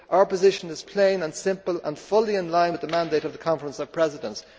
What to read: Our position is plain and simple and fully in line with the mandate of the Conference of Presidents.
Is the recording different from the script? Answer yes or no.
no